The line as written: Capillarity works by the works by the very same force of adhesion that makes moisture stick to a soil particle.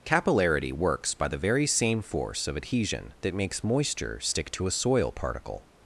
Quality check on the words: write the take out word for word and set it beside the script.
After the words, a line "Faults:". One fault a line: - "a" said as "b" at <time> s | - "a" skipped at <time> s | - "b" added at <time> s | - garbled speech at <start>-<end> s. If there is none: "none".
Capillarity works by the very same force of adhesion that makes moisture stick to a soil particle.
Faults:
- "works by the" skipped at 1.4 s